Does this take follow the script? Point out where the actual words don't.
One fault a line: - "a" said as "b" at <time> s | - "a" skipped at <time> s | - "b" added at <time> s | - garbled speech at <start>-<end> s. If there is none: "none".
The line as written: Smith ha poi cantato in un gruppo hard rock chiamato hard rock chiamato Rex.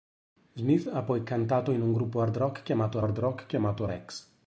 none